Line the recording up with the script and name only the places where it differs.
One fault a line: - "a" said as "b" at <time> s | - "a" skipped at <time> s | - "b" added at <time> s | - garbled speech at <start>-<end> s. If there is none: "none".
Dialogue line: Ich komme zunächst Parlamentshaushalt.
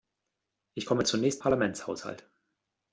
none